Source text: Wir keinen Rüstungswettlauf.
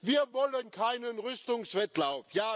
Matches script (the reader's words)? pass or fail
fail